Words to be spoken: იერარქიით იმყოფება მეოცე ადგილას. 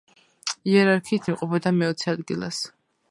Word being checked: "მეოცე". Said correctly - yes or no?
yes